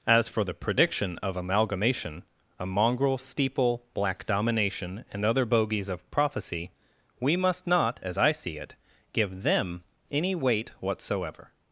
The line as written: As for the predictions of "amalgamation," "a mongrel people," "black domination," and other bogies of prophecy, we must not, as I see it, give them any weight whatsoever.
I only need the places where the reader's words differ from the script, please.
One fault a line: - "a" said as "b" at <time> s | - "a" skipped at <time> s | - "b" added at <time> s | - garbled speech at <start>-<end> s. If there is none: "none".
- "predictions" said as "prediction" at 0.5 s
- "people" said as "steeple" at 3.2 s